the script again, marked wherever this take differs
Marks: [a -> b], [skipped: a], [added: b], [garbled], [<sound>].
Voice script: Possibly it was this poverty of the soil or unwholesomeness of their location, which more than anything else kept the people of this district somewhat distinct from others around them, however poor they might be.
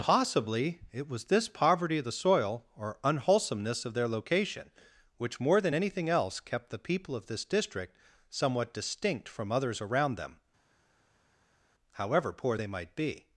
Possibly it was this poverty of the soil or unwholesomeness of their location, which more than anything else kept the people of this district somewhat distinct from others around them, however poor they might be.